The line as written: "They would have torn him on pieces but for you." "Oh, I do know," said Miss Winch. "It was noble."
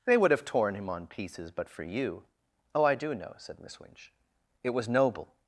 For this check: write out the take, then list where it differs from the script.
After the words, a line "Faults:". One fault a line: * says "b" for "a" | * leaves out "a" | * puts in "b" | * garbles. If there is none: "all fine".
"They would have torn him on pieces but for you." "Oh, I do know," said Miss Winch. "It was noble."
Faults:
all fine